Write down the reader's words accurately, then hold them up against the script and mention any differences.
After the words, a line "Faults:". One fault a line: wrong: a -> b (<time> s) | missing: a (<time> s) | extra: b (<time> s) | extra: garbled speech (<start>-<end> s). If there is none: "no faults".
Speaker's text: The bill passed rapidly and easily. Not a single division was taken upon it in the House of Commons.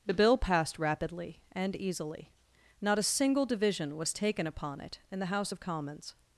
The bill passed rapidly and easily. Not a single division was taken upon it in the House of Commons.
Faults:
no faults